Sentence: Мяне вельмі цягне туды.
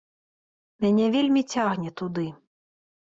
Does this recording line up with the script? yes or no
yes